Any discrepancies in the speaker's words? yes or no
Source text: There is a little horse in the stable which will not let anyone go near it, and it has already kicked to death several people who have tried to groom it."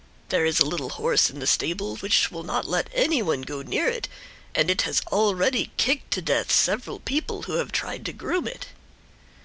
no